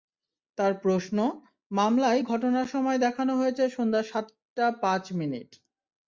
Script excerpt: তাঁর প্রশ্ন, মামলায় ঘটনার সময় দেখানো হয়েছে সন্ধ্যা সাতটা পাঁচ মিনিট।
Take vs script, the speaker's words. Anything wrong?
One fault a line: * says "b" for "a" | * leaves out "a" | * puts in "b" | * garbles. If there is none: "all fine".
all fine